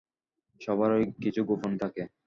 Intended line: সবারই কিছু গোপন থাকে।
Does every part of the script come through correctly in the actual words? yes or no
yes